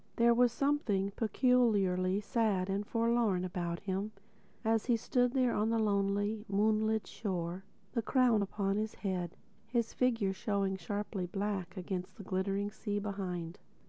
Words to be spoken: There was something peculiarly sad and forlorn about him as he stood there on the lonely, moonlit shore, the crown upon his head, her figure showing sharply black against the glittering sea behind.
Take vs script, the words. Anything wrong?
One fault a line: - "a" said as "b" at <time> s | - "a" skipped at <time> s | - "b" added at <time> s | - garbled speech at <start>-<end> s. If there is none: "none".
- "her" said as "his" at 9.7 s